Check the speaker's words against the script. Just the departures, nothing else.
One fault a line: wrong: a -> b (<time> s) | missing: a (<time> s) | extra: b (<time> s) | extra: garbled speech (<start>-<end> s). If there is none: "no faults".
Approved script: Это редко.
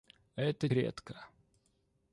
no faults